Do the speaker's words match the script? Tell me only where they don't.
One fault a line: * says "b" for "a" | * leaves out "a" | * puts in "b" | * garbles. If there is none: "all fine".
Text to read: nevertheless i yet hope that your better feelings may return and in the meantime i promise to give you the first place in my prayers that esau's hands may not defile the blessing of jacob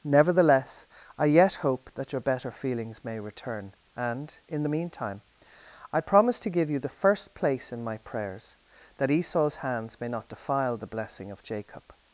all fine